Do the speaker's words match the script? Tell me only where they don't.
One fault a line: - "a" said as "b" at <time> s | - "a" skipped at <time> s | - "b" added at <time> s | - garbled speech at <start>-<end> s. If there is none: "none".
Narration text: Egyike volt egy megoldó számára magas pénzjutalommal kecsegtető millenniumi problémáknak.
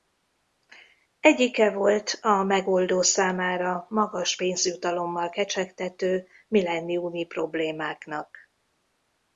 - "egy" said as "a" at 2.2 s